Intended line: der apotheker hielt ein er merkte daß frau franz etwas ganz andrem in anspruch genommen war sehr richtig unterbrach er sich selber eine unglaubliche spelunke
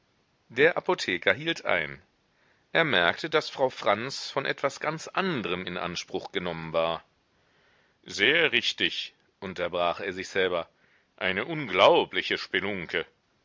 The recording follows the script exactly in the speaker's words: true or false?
false